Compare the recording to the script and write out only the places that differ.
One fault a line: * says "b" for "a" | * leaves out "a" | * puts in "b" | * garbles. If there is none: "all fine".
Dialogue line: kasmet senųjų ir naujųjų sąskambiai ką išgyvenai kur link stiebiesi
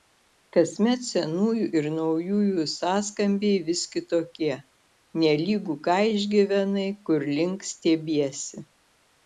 * puts in "vis kitokie nelygu"